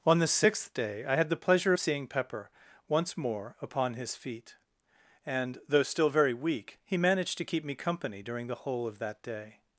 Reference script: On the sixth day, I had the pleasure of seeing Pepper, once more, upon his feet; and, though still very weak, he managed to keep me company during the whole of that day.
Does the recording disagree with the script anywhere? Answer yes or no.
no